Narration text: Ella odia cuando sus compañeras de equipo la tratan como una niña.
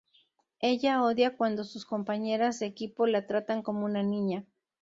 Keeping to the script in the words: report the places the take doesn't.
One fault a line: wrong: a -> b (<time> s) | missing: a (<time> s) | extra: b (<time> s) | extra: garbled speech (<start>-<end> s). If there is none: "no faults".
no faults